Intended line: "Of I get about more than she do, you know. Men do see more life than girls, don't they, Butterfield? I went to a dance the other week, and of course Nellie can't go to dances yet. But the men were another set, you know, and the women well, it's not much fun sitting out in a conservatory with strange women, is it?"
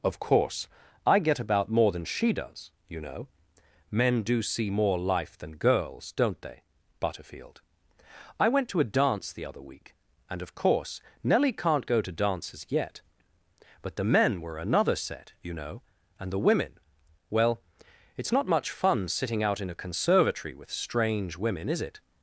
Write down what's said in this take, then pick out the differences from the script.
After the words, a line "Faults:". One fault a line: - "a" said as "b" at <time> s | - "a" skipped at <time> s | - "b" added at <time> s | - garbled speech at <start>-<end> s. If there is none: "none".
"Of course, I get about more than she does, you know. Men do see more life than girls, don't they, Butterfield? I went to a dance the other week, and of course Nellie can't go to dances yet. But the men were another set, you know, and the women well, it's not much fun sitting out in a conservatory with strange women, is it?"
Faults:
- "course" added at 0.2 s
- "do" said as "does" at 2.3 s